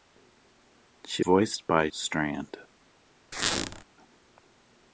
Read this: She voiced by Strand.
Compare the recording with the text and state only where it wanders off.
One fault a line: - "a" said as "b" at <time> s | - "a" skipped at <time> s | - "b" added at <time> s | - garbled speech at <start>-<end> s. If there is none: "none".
none